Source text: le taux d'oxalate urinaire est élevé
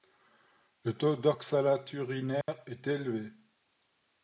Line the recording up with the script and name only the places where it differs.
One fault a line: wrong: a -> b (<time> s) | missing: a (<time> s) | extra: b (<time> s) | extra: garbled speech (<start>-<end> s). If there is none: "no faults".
no faults